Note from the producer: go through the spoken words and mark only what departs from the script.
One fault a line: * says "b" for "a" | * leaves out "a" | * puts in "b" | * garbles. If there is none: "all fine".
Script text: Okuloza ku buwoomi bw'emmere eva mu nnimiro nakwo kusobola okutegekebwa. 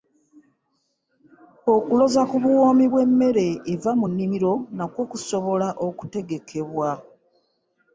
all fine